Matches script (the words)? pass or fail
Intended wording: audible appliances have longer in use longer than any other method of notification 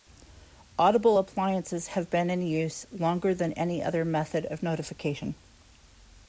fail